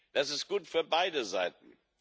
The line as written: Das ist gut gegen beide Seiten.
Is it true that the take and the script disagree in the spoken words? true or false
true